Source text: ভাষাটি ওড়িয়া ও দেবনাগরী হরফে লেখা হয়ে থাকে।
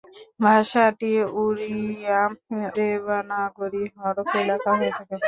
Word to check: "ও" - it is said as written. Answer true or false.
false